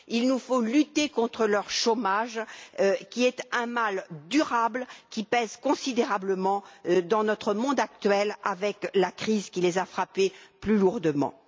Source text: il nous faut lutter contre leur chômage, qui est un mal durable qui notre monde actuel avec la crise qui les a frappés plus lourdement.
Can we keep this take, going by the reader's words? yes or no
no